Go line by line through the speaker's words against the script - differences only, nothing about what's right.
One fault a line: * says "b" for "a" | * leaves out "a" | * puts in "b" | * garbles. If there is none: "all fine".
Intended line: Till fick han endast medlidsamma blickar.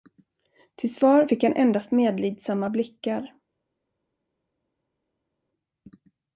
* puts in "svar"